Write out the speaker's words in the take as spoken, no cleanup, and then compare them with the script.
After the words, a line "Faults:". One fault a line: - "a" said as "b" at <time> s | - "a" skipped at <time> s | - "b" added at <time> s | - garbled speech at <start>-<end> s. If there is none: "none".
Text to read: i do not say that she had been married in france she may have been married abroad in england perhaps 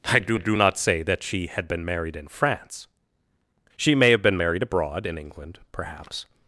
i do do not say that she had been married in france she may have been married abroad in england perhaps
Faults:
- "do" added at 0.4 s